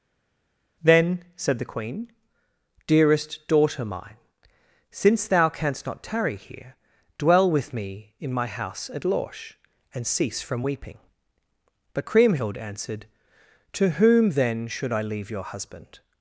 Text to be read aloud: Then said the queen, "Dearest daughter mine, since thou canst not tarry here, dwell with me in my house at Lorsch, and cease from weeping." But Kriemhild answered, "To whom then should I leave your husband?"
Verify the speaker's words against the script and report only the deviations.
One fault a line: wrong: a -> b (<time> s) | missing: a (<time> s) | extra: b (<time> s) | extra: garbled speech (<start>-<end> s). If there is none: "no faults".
no faults